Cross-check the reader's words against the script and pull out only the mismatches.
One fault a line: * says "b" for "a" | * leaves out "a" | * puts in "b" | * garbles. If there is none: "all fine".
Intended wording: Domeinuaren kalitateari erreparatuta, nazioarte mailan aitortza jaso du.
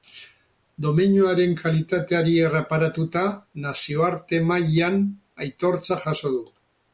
all fine